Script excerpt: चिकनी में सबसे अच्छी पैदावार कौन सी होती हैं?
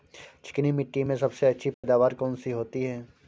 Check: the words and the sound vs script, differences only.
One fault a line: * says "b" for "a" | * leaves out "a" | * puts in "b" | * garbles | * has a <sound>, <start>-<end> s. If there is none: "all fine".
* puts in "मिट्टी"
* has a dropout, 1.7-1.8 s